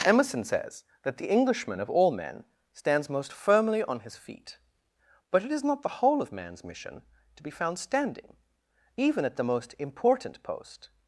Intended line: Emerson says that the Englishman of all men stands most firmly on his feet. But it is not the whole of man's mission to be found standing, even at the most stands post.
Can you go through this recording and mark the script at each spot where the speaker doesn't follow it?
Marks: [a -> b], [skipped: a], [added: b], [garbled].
Emerson says that the Englishman of all men stands most firmly on his feet. But it is not the whole of man's mission to be found standing, even at the most [stands -> important] post.